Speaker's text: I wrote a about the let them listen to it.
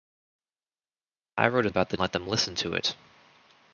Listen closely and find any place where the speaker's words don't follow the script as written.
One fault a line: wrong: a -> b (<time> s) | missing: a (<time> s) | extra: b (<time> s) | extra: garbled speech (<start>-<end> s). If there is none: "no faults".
no faults